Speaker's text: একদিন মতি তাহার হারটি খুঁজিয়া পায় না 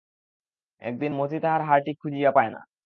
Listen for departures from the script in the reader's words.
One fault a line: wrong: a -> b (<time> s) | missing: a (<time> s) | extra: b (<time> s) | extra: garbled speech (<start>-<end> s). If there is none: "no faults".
no faults